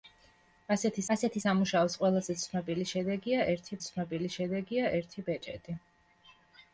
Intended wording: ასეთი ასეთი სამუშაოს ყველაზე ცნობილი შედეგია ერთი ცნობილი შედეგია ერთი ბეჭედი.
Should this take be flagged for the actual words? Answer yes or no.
no